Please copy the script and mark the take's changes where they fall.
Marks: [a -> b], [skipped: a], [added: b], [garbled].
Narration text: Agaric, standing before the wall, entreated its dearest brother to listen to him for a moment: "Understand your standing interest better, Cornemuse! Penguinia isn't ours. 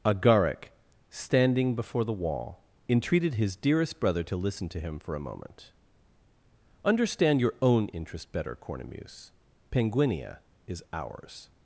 Agaric, standing before the wall, entreated [its -> his] dearest brother to listen to him for a moment: "Understand your [standing -> own] interest better, Cornemuse! Penguinia [isn't -> is] ours.